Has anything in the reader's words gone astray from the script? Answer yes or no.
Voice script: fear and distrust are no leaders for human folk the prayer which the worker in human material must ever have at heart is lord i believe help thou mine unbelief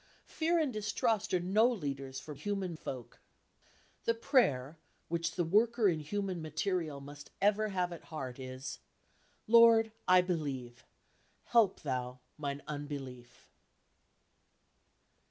no